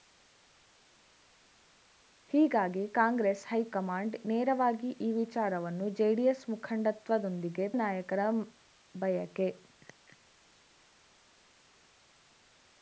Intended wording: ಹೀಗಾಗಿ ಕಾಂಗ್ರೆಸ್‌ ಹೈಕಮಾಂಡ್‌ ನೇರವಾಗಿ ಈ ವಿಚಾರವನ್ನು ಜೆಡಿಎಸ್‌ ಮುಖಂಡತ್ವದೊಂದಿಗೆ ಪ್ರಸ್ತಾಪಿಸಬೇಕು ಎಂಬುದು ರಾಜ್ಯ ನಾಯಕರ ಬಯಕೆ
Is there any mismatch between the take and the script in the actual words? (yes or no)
yes